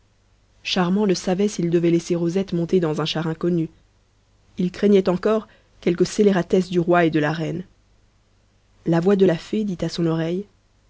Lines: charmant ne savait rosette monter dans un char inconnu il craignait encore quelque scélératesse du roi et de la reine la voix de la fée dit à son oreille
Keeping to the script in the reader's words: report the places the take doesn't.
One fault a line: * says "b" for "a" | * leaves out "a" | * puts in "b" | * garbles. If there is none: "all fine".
* puts in "s'il devait laisser"